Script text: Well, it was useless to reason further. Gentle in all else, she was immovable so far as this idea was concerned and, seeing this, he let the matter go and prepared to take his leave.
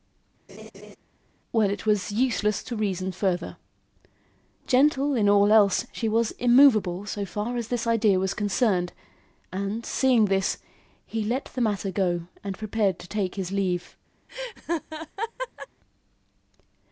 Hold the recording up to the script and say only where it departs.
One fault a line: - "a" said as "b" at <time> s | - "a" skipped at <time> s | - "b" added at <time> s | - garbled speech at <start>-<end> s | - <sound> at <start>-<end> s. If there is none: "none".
- laugh at 0.5-1.0 s
- laugh at 14.3-15.7 s